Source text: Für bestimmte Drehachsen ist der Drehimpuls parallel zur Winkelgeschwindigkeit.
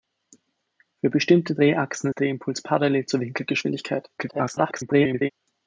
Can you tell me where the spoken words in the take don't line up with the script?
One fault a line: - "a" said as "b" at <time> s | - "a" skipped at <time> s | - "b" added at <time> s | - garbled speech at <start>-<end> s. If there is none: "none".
- "ist" skipped at 2.1 s
- garbled speech at 4.2-5.3 s